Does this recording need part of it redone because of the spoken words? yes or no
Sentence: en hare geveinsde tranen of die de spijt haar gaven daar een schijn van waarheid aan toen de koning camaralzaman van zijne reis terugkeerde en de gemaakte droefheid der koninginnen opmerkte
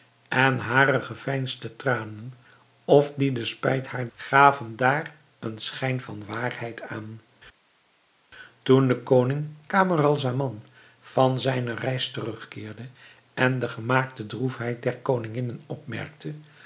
no